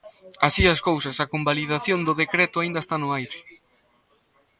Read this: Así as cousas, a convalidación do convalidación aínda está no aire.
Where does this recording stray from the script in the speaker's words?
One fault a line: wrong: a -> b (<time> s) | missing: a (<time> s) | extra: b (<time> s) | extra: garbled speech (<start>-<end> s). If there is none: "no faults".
wrong: convalidación -> decreto (2.2 s)